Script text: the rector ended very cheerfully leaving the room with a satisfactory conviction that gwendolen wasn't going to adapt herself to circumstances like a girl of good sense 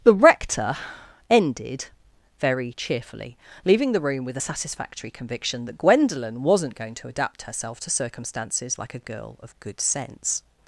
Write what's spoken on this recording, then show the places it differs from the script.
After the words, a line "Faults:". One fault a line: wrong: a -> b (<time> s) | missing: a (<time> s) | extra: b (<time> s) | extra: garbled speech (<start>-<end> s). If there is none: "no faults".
the rector ended very cheerfully leaving the room with a satisfactory conviction that gwendolen wasn't going to adapt herself to circumstances like a girl of good sense
Faults:
no faults